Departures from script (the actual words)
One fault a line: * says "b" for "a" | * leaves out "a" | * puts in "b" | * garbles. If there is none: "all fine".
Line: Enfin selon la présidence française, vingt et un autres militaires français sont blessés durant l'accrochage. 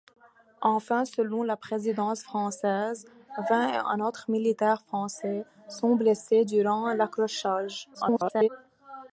* garbles